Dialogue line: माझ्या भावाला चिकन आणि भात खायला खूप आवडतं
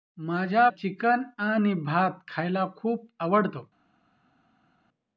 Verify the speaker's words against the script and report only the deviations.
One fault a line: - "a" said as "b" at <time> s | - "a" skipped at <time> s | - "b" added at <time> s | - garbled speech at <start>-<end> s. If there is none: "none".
- "भावाला" skipped at 0.7 s